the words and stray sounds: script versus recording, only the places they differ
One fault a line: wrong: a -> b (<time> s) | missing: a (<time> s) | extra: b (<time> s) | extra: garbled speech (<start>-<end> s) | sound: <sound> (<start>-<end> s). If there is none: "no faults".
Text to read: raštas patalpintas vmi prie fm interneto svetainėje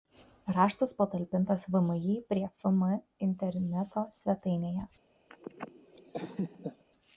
sound: laugh (5.3-6.8 s)